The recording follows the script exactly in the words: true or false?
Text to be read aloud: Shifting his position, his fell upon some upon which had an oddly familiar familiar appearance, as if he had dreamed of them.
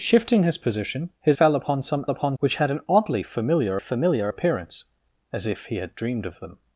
true